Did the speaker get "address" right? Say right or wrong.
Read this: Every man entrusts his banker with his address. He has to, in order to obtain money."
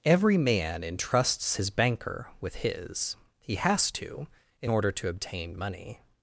wrong